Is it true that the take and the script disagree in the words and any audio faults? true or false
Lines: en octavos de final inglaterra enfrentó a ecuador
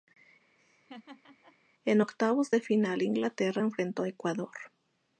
true